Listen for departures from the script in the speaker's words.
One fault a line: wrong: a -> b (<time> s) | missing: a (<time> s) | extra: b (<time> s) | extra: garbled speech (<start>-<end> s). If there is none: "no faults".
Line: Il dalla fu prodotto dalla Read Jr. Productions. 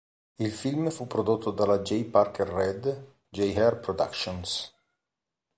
wrong: dalla -> film (0.5 s)
extra: J Parker (1.8 s)